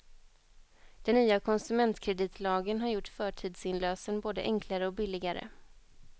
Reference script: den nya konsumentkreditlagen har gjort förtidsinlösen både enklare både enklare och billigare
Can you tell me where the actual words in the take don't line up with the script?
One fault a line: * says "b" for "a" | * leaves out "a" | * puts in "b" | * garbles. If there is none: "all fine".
* leaves out "både enklare"